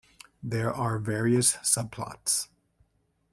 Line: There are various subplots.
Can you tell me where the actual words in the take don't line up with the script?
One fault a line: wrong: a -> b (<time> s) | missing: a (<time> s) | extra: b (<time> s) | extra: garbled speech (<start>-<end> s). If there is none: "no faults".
no faults